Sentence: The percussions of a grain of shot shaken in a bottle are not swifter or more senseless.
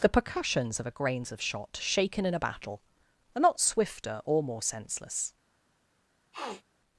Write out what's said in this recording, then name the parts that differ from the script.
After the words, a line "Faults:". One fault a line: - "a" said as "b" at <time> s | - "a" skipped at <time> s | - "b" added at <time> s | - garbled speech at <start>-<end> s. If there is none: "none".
The percussions of a grains of shot shaken in a battle are not swifter or more senseless.
Faults:
- "grain" said as "grains" at 0.9 s
- "bottle" said as "battle" at 2.4 s